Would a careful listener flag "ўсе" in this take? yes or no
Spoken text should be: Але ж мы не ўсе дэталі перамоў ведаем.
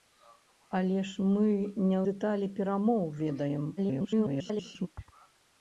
yes